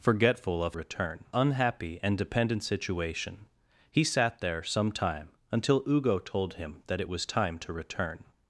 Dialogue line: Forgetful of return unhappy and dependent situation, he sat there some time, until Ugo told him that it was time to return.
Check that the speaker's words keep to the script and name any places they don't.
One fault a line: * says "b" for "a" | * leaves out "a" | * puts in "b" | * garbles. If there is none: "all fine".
all fine